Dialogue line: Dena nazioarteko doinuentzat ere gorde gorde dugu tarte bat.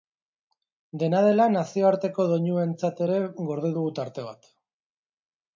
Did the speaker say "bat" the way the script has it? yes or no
yes